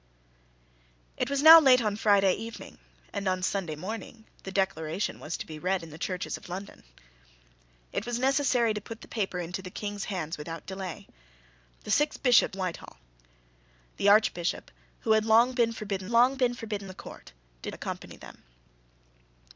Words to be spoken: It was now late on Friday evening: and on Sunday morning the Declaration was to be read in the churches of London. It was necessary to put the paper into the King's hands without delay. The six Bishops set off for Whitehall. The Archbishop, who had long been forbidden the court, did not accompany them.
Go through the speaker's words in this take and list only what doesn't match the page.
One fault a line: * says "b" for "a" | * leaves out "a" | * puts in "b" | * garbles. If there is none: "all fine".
* leaves out "set off for"
* puts in "long been forbidden"
* leaves out "not"